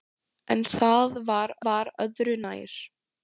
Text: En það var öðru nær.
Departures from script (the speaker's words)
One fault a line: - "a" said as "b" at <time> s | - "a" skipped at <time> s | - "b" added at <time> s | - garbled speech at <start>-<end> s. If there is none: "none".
- "var" added at 1.7 s